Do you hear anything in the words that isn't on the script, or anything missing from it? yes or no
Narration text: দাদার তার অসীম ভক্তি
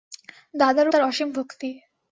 no